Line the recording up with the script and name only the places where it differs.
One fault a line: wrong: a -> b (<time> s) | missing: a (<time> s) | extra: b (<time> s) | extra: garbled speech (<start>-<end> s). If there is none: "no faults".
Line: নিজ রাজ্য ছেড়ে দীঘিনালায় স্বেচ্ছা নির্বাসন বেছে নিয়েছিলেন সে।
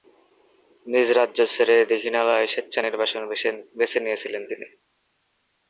wrong: সে -> তিনি (4.5 s)